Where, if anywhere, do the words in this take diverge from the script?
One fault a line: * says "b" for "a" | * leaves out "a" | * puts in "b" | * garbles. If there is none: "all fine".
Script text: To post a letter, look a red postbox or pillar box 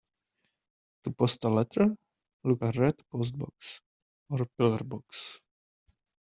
all fine